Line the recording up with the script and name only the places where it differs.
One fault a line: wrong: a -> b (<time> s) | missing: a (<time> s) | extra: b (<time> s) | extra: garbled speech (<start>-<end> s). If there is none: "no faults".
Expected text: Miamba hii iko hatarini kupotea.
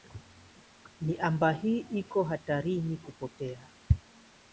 no faults